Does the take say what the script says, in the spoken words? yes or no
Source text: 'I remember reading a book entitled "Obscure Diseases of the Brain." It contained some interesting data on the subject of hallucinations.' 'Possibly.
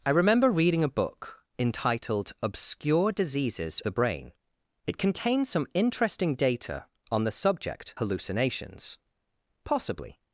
no